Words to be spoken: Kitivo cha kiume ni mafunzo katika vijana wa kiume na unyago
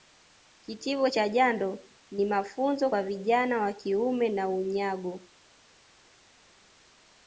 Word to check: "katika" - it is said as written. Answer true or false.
false